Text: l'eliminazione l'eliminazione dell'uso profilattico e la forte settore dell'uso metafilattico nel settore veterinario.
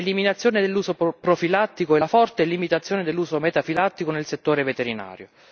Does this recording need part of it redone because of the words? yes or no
yes